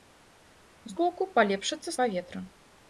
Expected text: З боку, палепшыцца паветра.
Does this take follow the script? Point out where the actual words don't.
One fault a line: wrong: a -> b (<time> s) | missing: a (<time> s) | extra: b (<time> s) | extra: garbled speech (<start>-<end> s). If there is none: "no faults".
no faults